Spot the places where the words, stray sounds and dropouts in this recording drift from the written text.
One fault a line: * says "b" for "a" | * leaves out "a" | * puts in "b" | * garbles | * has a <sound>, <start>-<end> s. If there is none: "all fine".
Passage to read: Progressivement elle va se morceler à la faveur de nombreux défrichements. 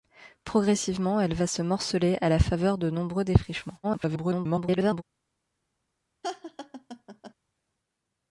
* garbles
* has a laugh, 6.2-7.3 s